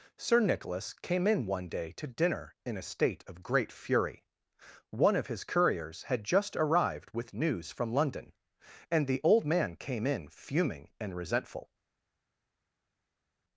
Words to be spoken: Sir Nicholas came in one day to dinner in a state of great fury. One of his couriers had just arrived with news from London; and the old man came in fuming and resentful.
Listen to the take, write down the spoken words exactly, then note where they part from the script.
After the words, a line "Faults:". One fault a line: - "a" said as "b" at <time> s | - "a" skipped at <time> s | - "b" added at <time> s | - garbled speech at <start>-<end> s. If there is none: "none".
Sir Nicholas came in one day to dinner in a state of great fury. One of his couriers had just arrived with news from London; and the old man came in fuming and resentful.
Faults:
none